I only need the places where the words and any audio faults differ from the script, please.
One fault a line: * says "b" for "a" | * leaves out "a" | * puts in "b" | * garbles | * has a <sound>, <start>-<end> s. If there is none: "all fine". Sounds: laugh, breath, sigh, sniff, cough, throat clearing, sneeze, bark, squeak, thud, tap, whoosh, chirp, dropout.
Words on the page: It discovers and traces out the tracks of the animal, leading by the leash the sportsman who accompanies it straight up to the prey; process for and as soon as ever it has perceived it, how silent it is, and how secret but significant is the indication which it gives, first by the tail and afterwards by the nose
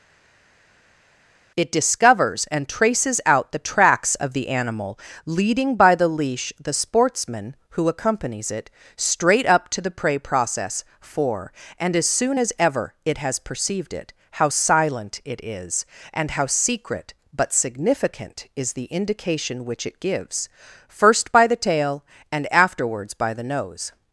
all fine